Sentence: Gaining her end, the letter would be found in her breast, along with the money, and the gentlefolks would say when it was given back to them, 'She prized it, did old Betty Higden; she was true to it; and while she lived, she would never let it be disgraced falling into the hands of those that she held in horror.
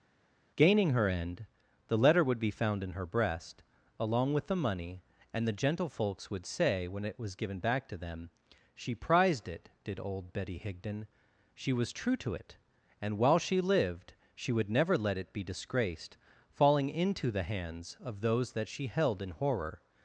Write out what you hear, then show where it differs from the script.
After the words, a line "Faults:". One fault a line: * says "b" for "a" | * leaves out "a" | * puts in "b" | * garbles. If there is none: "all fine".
Gaining her end, the letter would be found in her breast, along with the money, and the gentlefolks would say when it was given back to them, 'She prized it, did old Betty Higden; she was true to it; and while she lived, she would never let it be disgraced falling into the hands of those that she held in horror.
Faults:
all fine